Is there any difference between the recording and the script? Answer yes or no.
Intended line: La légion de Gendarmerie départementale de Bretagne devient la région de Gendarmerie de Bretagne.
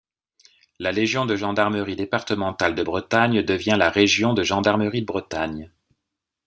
no